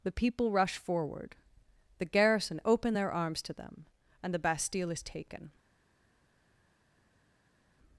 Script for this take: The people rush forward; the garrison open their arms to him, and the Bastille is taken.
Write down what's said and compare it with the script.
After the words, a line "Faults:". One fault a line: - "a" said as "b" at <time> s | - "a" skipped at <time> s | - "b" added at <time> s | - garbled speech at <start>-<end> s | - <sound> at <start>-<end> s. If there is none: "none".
The people rush forward; the garrison open their arms to them, and the Bastille is taken.
Faults:
- "him" said as "them" at 3.5 s